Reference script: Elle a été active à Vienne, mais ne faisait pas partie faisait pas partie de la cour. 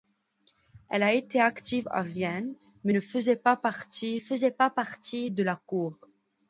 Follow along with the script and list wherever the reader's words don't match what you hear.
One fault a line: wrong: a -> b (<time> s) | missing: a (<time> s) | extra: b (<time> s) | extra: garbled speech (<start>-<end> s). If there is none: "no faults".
no faults